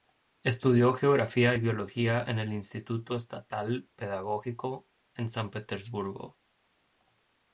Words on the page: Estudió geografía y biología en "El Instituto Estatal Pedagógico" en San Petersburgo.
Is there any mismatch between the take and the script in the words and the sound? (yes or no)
no